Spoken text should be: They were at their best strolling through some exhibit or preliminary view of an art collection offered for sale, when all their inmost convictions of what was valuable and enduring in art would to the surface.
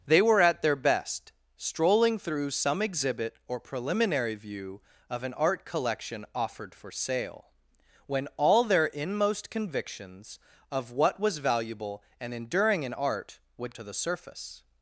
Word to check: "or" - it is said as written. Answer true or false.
true